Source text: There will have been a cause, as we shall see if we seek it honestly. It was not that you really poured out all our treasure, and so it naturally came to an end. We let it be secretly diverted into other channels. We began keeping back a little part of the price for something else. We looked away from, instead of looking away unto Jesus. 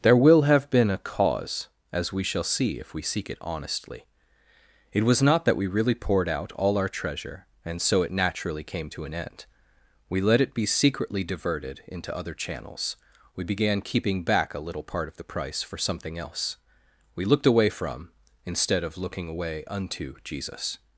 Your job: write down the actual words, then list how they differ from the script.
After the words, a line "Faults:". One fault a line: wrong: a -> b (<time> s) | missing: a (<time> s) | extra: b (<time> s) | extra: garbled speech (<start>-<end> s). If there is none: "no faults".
There will have been a cause, as we shall see if we seek it honestly. It was not that we really poured out all our treasure, and so it naturally came to an end. We let it be secretly diverted into other channels. We began keeping back a little part of the price for something else. We looked away from, instead of looking away unto Jesus.
Faults:
wrong: you -> we (5.5 s)